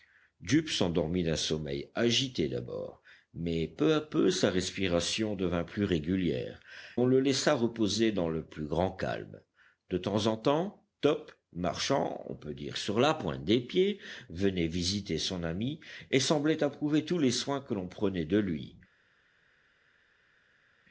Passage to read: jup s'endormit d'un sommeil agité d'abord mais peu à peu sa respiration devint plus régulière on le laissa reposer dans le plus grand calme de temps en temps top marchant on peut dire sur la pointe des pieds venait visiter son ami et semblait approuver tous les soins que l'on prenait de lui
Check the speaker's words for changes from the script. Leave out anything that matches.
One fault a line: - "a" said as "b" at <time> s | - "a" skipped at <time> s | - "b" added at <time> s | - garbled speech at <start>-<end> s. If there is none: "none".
none